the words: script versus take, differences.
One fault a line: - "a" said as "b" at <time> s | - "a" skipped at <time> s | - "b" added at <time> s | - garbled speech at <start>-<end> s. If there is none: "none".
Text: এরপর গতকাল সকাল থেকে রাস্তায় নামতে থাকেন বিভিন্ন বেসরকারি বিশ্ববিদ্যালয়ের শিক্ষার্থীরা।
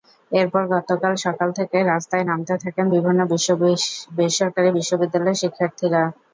none